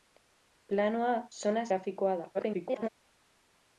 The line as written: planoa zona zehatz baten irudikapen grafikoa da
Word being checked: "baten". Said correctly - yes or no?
no